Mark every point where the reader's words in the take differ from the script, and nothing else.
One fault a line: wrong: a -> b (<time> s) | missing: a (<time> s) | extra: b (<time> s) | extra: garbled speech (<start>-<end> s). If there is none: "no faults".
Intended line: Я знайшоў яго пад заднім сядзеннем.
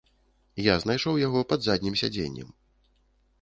no faults